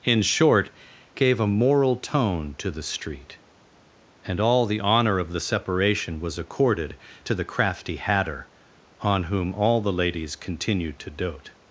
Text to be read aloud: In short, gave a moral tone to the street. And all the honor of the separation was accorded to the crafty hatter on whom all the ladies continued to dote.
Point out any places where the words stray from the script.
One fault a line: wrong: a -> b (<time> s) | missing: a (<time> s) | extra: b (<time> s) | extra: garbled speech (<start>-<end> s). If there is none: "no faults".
no faults